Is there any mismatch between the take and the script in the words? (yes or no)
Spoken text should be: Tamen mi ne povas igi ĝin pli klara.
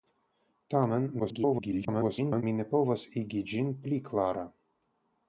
yes